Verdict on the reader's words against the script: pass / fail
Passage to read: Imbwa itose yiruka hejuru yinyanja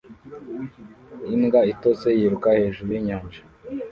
pass